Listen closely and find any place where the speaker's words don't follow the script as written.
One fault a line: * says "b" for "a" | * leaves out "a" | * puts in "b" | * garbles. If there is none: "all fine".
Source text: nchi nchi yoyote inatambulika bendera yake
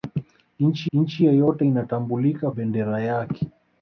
all fine